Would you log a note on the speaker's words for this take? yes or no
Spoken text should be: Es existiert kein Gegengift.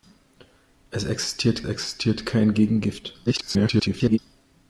yes